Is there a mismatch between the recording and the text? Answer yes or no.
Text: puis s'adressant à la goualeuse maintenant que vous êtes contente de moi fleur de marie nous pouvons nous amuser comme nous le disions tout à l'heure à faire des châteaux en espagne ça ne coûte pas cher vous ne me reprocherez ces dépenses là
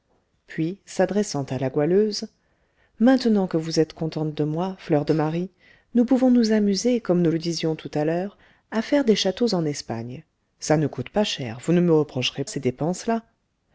no